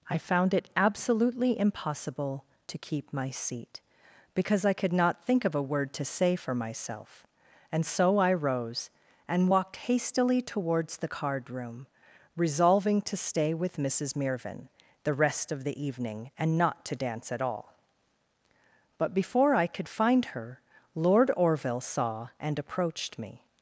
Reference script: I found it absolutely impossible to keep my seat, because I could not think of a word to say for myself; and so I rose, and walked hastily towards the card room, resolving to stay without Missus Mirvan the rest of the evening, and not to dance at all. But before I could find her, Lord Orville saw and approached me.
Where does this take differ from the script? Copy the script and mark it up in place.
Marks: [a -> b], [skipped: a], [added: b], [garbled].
I found it absolutely impossible to keep my seat, because I could not think of a word to say for myself; and so I rose, and walked hastily towards the card room, resolving to stay [without -> with] Missus Mirvan the rest of the evening, and not to dance at all. But before I could find her, Lord Orville saw and approached me.